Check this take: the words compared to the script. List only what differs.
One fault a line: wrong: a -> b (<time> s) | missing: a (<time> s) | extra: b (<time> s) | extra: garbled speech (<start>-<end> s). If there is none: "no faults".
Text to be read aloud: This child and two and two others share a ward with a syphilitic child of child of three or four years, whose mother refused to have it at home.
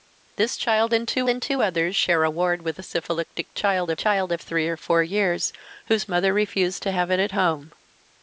no faults